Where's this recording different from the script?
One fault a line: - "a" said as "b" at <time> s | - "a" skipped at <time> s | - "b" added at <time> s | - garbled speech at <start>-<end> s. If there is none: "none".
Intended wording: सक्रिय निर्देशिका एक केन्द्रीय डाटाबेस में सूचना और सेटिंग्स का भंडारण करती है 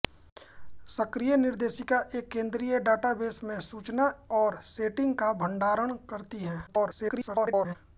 - garbled speech at 6.7-7.8 s